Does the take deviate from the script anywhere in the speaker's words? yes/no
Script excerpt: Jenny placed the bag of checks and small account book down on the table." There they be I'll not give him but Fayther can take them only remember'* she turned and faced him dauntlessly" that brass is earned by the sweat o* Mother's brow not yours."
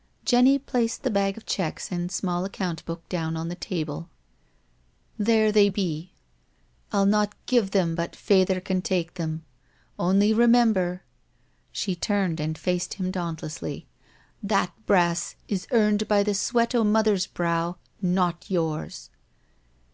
yes